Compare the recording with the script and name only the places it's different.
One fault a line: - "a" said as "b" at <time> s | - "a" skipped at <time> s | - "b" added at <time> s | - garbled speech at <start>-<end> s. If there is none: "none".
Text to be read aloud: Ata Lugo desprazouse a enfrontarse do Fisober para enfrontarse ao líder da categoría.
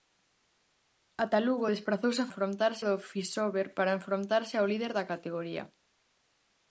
none